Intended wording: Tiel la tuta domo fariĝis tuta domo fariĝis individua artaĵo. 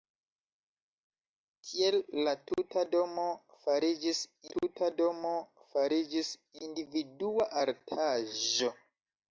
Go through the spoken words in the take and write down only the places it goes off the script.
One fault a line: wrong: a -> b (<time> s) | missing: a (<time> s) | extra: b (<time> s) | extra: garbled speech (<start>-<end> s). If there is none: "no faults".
no faults